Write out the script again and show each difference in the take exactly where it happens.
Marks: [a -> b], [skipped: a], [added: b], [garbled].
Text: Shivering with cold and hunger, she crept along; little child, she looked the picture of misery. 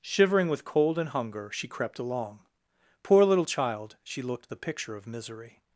Shivering with cold and hunger, she crept along; [added: poor] little child, she looked the picture of misery.